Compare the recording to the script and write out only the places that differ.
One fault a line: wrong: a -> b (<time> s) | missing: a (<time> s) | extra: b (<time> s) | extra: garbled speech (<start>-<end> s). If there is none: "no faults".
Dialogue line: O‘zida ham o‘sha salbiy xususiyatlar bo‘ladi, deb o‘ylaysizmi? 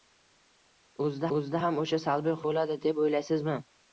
extra: o‘zida (1.4 s)
missing: xususiyatlar (2.4 s)